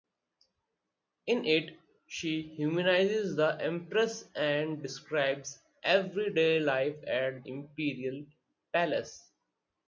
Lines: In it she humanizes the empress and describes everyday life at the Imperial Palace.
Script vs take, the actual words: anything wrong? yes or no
yes